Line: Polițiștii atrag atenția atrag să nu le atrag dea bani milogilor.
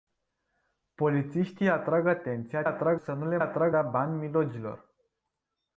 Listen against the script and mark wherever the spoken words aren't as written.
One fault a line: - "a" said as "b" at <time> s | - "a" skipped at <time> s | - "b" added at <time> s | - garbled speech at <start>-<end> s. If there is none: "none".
none